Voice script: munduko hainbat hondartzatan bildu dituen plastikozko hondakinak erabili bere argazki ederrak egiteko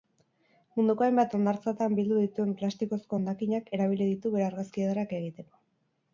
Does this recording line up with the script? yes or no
no